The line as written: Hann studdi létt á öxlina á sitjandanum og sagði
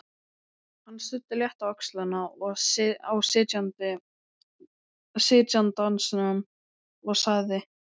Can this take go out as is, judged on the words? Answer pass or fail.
pass